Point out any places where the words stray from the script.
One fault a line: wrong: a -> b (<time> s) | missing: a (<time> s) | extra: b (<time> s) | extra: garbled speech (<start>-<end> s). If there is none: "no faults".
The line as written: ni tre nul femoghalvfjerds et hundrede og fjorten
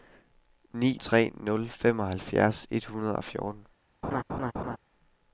no faults